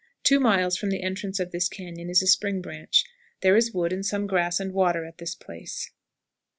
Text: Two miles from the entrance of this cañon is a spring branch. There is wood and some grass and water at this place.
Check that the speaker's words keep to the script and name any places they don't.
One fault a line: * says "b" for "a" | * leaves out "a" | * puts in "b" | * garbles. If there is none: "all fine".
all fine